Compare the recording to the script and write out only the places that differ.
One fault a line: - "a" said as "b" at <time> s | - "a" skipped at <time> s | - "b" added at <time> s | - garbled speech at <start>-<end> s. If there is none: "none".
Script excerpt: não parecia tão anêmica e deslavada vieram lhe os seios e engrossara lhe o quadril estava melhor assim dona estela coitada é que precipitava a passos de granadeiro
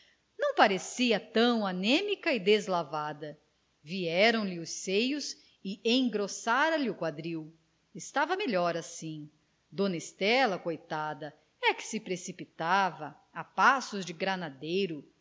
- "se" added at 11.8 s